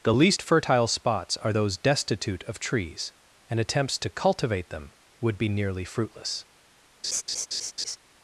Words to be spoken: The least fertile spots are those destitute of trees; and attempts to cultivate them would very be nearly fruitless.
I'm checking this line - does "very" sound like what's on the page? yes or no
no